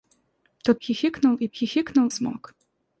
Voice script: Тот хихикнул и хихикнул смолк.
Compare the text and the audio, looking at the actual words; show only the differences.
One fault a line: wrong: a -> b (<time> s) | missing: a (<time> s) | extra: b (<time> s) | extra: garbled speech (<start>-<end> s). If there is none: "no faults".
no faults